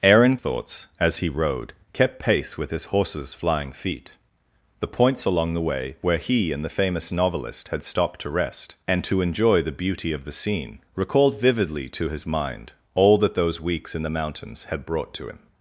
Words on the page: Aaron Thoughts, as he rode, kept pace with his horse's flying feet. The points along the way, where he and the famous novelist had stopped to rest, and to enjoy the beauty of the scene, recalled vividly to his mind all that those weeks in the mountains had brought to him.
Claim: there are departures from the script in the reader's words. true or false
false